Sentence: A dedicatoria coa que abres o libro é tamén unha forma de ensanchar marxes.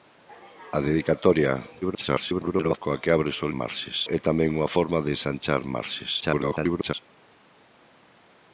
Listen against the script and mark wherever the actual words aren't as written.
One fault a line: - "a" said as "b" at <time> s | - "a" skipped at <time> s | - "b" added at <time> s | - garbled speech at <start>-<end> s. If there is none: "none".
- garbled speech at 1.8-2.8 s
- "libro" said as "marxes" at 3.6 s
- garbled speech at 6.2-6.9 s